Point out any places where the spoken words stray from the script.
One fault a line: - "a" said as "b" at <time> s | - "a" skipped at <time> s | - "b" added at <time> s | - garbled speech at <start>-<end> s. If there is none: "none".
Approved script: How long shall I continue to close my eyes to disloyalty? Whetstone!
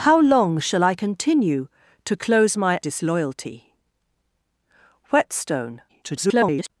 - "eyes to" skipped at 2.8 s
- garbled speech at 5.9-6.7 s